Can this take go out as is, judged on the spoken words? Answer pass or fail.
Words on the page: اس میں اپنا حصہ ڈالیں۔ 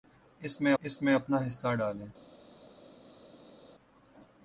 fail